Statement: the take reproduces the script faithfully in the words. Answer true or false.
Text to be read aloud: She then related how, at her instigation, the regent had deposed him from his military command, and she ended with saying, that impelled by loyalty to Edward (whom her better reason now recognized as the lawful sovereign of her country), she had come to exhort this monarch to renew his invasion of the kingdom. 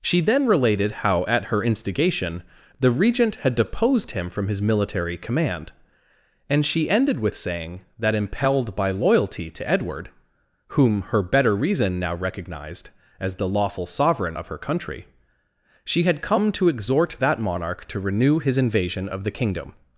false